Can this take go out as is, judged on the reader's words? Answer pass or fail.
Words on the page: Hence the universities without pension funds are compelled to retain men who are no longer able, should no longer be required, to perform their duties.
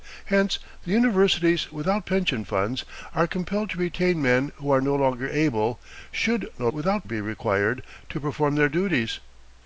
fail